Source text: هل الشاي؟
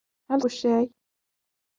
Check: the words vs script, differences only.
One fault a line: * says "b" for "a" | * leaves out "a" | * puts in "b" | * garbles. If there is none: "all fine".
all fine